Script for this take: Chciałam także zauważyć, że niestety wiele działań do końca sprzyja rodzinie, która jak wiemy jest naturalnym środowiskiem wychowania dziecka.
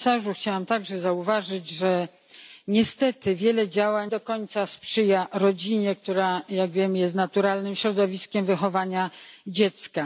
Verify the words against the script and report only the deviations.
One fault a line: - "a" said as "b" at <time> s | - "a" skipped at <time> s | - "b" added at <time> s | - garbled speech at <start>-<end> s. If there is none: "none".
none